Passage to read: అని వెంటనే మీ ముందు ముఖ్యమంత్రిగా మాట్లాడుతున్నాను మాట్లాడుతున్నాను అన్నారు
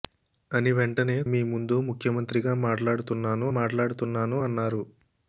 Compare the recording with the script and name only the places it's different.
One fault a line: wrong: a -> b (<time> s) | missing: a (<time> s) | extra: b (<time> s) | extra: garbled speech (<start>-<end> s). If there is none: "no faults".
no faults